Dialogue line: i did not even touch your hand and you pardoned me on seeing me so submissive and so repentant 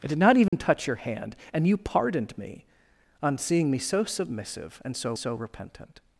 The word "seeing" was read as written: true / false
true